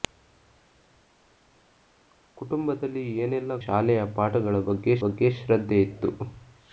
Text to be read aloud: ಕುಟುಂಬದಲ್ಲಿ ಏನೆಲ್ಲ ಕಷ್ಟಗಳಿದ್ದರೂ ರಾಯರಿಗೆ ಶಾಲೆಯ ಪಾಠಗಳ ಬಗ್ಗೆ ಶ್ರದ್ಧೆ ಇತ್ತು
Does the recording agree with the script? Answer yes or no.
no